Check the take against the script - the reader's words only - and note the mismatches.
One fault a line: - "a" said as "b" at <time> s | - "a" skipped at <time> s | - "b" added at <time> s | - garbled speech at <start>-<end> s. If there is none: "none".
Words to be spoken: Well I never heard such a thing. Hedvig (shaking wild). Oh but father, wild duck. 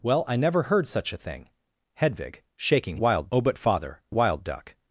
none